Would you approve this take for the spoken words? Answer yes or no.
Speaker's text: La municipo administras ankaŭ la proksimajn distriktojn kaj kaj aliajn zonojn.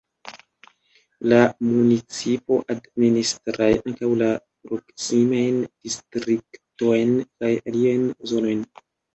no